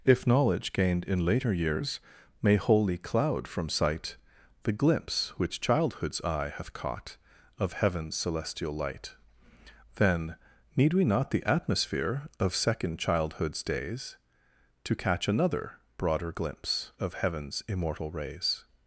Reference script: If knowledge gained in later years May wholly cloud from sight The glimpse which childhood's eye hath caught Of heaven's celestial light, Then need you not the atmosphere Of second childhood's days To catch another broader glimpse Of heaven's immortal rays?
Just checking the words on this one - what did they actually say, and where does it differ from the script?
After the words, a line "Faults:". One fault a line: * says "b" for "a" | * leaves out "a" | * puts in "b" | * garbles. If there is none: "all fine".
If knowledge gained in later years May wholly cloud from sight The glimpse which childhood's eye hath caught Of heaven's celestial light, Then need we not the atmosphere Of second childhood's days To catch another broader glimpse Of heaven's immortal rays?
Faults:
* says "we" for "you"